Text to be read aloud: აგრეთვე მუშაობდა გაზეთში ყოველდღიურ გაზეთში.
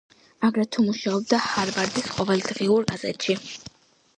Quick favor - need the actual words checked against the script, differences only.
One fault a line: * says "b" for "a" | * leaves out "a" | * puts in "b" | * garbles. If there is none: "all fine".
* says "ჰარვარდის" for "გაზეთში"